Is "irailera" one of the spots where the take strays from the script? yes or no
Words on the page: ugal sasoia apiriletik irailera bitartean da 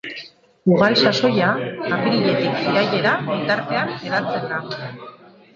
no